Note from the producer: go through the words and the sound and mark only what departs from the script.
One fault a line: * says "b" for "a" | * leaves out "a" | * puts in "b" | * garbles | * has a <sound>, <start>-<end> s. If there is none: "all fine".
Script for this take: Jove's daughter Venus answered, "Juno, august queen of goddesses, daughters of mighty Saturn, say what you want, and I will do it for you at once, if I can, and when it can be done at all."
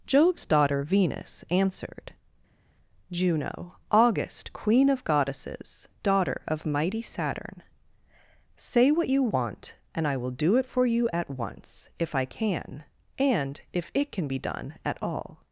* says "daughter" for "daughters"
* says "if" for "when"